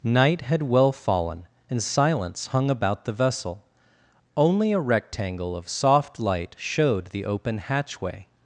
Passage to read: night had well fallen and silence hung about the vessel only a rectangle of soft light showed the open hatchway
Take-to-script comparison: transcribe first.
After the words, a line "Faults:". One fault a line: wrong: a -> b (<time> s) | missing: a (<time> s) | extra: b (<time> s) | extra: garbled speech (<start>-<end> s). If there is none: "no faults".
night had well fallen and silence hung about the vessel only a rectangle of soft light showed the open hatchway
Faults:
no faults